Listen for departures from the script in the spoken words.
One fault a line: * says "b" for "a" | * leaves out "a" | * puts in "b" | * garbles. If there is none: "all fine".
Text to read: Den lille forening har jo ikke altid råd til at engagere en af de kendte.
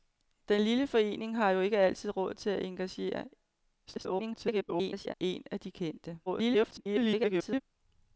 * garbles
* garbles